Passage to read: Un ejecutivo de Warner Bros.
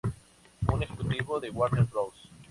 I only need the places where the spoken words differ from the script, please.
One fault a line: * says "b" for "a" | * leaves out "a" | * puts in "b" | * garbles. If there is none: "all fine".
all fine